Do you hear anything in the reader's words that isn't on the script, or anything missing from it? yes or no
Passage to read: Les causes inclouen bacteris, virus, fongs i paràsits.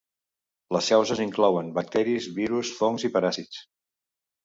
no